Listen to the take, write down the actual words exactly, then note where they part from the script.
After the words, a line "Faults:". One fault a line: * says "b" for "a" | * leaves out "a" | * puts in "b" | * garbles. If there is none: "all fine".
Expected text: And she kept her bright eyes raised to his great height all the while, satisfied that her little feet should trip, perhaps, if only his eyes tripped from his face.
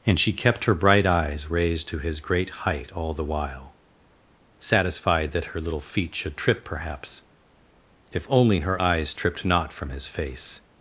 And she kept her bright eyes raised to his great height all the while, satisfied that her little feet should trip, perhaps, if only her eyes tripped not from his face.
Faults:
* says "her" for "his"
* puts in "not"